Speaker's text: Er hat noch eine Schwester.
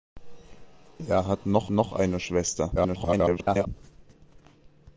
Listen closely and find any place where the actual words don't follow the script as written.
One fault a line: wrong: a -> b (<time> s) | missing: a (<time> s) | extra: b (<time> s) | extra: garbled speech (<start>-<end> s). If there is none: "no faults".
extra: noch (1.7 s)
extra: garbled speech (2.7-3.7 s)